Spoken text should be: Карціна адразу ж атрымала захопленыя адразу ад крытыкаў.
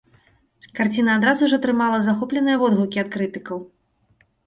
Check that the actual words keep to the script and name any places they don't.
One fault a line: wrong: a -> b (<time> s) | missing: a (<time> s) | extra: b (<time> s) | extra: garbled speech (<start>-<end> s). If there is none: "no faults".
wrong: адразу -> водгукі (2.7 s)